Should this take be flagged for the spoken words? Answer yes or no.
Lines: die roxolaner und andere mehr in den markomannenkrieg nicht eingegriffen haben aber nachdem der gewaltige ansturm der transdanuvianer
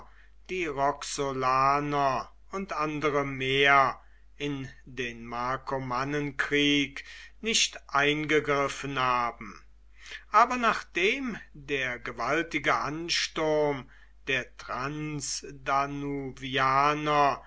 no